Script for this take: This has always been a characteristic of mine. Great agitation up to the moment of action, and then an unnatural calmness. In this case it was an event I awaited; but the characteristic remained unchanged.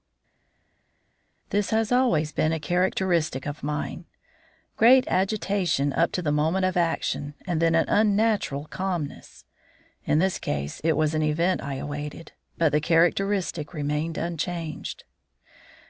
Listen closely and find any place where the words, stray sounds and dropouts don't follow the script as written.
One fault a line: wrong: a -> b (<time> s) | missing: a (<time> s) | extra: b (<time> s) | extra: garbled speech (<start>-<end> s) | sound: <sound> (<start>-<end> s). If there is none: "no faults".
no faults